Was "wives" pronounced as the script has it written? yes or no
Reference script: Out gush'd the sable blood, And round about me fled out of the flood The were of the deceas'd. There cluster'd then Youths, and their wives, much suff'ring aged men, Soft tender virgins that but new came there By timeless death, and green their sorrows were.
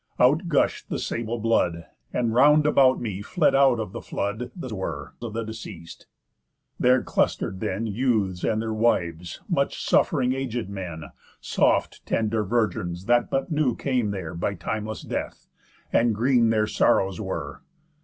yes